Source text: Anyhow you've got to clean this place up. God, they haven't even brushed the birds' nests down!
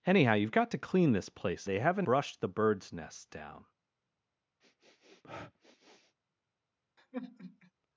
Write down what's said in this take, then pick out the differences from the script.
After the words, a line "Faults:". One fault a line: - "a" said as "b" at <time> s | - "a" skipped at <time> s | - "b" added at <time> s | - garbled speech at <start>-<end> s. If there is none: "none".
Anyhow you've got to clean this place they haven't brushed the birds' nests down!
Faults:
- "up God" skipped at 1.7 s
- "even" skipped at 2.1 s